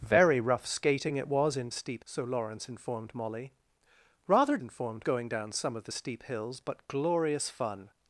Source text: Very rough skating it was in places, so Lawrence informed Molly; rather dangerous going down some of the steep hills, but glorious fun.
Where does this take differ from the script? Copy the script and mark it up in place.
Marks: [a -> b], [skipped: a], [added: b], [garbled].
Very rough skating it was in [places, -> steep] so Lawrence informed Molly; rather [dangerous -> informed] going down some of the steep hills, but glorious fun.